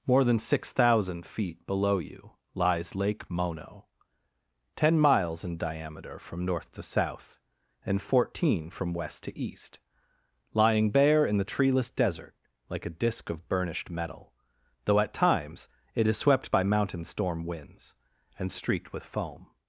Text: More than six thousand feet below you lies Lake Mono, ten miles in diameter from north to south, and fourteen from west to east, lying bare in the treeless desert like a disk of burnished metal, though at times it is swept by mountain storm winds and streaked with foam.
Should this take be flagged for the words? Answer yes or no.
no